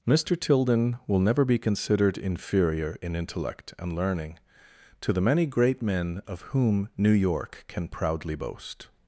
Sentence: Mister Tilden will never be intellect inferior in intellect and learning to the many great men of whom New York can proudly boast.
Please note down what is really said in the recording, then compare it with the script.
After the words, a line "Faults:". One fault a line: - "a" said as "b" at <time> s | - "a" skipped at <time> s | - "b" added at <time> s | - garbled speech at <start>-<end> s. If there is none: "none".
Mister Tilden will never be considered inferior in intellect and learning to the many great men of whom New York can proudly boast.
Faults:
- "intellect" said as "considered" at 1.6 s